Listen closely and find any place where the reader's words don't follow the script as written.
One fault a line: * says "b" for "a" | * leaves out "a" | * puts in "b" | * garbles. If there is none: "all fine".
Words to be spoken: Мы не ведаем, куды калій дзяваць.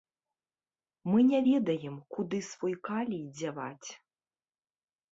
* puts in "свой"